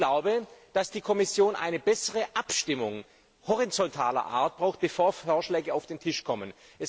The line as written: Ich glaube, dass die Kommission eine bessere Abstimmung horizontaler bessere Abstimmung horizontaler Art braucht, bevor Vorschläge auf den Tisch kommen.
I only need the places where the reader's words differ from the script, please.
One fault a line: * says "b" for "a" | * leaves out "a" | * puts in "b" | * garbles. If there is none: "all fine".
* leaves out "bessere Abstimmung horizontaler"